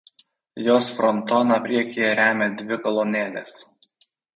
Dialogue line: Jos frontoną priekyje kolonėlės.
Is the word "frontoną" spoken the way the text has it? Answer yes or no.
yes